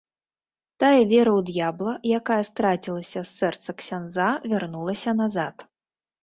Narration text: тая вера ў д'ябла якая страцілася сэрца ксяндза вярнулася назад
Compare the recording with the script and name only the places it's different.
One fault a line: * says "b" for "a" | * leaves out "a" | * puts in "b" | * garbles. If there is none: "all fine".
* puts in "з"